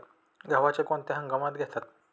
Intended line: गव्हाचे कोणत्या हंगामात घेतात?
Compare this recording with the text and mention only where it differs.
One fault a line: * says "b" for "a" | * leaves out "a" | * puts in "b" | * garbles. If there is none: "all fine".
all fine